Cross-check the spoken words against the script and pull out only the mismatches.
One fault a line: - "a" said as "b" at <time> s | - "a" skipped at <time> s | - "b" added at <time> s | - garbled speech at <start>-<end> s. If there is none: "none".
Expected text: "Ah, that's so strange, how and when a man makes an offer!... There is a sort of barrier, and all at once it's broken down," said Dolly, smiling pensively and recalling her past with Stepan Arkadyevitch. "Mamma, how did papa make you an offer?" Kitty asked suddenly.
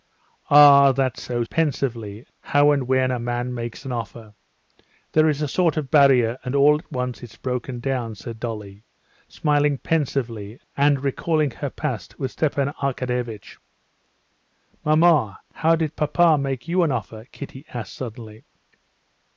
- "strange" said as "pensively" at 1.4 s